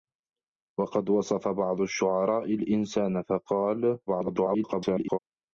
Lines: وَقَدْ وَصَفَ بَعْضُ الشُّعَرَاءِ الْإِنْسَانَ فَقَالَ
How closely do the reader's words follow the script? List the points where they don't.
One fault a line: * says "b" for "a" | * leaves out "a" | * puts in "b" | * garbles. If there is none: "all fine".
* garbles